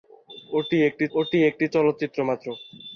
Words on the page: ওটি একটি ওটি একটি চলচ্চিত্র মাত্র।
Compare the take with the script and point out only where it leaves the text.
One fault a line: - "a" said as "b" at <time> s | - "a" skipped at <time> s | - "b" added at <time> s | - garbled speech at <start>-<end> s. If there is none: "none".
none